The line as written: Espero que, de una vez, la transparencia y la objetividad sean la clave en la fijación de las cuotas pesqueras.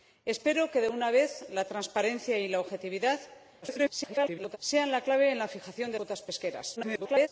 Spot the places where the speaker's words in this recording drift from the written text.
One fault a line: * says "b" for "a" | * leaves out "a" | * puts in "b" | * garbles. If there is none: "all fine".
* garbles
* leaves out "las"
* garbles